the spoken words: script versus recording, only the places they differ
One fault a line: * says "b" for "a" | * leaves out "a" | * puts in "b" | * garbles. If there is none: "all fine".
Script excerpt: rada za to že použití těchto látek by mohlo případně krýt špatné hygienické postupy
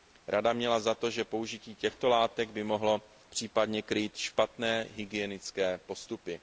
* puts in "měla"